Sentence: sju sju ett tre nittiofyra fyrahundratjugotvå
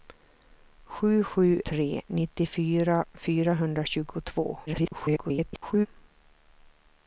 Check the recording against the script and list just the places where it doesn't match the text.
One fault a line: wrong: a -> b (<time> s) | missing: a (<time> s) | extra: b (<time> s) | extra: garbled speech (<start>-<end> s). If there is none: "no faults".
missing: ett (1.6 s)
extra: garbled speech (4.7-5.9 s)